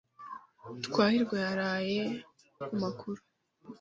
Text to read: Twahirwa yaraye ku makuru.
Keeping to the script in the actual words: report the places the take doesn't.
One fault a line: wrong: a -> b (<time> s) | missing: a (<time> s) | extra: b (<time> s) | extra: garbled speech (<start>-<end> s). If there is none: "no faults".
no faults